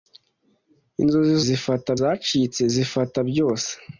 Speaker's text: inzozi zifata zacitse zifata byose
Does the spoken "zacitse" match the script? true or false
true